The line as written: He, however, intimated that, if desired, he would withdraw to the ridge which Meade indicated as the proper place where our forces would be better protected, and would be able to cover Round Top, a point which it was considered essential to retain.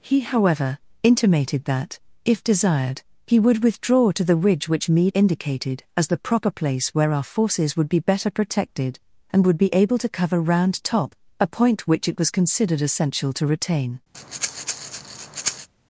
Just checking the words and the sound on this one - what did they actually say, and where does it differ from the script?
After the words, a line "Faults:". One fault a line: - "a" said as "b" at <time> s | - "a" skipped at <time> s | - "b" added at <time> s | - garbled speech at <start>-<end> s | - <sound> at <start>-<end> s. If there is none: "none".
He, however, intimated that, if desired, he would withdraw to the ridge which Meade indicated as the proper place where our forces would be better protected, and would be able to cover Round Top, a point which it was considered essential to retain.
Faults:
- breath at 14.1-15.7 s